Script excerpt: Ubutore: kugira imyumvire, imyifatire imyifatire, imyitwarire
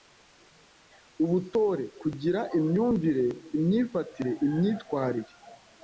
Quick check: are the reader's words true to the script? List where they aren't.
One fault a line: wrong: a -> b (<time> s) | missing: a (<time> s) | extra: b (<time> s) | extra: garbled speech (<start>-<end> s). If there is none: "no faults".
missing: imyifatire (4.3 s)